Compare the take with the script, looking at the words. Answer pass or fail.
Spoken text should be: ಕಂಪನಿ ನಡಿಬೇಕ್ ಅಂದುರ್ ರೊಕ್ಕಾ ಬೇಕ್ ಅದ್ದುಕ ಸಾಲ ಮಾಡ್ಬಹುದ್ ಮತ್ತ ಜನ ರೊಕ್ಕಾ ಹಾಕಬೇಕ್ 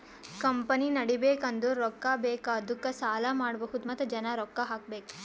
pass